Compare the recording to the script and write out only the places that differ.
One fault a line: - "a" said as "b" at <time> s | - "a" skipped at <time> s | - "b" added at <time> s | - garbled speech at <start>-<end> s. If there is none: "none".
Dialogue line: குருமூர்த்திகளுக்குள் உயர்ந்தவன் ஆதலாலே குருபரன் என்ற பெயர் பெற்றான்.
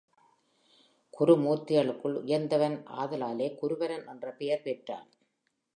none